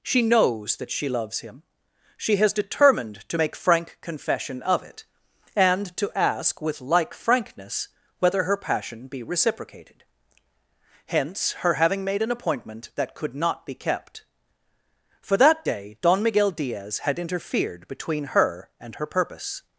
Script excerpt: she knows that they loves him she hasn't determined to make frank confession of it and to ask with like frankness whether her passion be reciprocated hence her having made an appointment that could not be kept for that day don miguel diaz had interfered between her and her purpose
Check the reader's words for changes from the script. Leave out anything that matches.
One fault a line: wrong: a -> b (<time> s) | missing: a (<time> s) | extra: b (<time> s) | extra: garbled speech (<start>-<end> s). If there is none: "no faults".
wrong: they -> she (0.9 s)
wrong: hasn't -> has (2.4 s)